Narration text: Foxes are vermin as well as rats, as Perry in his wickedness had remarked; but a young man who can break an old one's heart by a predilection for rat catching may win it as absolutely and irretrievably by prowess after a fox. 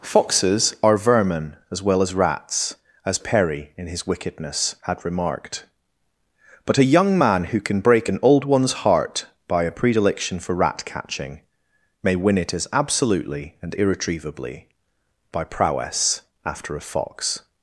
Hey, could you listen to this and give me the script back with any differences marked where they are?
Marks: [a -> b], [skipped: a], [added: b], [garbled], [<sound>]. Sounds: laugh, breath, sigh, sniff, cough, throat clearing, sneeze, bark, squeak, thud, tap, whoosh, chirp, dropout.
Foxes are vermin as well as rats, as Perry in his wickedness had remarked; but a young man who can break an old one's heart by a predilection for rat catching may win it as absolutely and irretrievably by prowess after a fox.